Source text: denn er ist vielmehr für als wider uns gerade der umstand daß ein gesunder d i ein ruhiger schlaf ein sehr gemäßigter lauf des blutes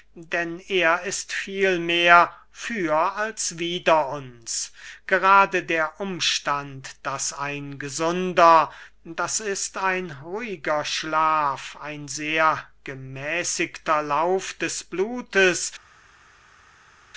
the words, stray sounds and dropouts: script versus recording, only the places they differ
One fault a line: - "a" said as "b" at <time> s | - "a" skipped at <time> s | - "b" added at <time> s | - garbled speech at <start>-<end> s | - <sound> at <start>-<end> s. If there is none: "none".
none